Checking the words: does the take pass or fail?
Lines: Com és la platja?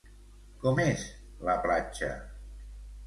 pass